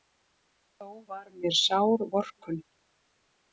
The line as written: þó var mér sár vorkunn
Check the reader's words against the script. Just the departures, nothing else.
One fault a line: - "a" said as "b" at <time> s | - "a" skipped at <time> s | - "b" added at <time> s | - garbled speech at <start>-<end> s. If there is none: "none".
none